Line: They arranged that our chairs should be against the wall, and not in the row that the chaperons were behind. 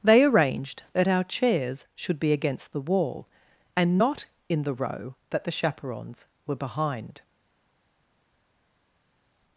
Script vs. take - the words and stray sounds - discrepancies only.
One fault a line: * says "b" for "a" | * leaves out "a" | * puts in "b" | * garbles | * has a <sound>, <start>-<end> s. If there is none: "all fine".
all fine